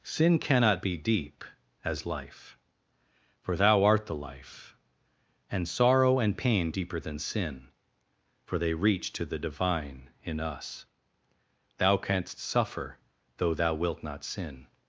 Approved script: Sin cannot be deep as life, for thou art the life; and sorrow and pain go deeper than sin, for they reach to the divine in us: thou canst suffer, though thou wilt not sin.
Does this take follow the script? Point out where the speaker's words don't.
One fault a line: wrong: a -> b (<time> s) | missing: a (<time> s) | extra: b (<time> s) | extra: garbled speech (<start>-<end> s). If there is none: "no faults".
missing: go (6.7 s)